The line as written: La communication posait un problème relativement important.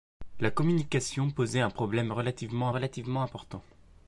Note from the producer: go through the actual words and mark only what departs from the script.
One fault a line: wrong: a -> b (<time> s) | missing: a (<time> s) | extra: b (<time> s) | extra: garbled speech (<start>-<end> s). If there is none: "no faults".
extra: relativement (2.7 s)